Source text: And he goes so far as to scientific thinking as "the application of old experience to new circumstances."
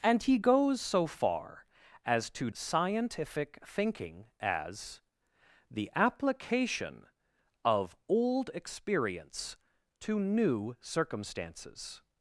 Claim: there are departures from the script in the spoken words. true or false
false